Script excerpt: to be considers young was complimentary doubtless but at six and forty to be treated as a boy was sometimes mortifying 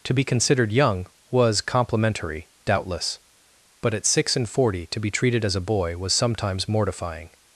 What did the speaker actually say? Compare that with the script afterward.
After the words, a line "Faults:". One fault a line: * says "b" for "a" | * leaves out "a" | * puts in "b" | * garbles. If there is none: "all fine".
to be considered young was complimentary doubtless but at six and forty to be treated as a boy was sometimes mortifying
Faults:
* says "considered" for "considers"